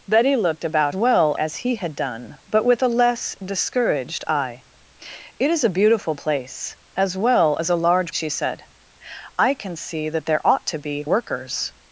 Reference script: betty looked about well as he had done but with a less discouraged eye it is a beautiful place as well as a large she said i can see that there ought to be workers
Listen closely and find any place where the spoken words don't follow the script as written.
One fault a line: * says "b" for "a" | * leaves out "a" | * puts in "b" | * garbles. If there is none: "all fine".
all fine